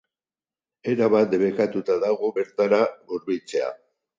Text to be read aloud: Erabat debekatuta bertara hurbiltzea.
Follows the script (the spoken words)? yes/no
no